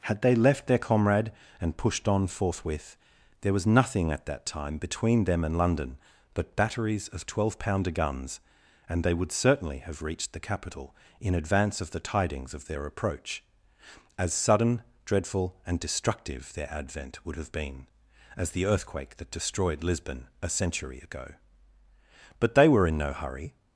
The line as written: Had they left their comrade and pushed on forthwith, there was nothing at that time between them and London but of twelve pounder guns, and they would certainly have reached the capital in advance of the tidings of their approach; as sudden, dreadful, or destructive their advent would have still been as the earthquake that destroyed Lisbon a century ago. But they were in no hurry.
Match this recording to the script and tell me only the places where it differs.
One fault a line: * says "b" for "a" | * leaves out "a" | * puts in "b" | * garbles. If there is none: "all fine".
* puts in "batteries"
* says "and" for "or"
* leaves out "still"